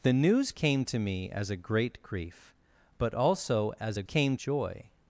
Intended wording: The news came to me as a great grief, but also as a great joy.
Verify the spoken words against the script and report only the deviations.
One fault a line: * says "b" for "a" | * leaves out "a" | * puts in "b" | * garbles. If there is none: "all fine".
* says "came" for "great"